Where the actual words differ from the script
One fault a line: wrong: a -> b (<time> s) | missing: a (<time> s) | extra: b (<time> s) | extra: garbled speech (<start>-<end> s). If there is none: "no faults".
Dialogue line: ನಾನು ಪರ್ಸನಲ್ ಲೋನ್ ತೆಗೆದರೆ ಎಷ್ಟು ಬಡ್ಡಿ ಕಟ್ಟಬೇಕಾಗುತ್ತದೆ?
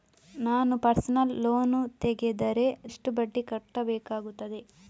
no faults